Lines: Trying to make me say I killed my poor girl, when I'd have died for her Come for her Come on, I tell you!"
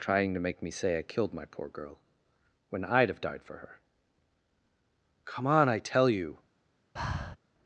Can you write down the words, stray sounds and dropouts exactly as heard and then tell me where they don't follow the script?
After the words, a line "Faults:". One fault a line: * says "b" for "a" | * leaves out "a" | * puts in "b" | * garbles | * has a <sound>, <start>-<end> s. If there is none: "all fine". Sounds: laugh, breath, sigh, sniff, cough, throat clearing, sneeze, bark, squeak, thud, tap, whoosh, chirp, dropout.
Trying to make me say I killed my poor girl, when I'd have died for her Come on, I tell you!"
Faults:
* leaves out "for her Come"
* has a breath, 7.0-7.4 s